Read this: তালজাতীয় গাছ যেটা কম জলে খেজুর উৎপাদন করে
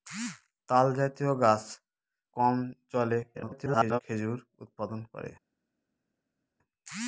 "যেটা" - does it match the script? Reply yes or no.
no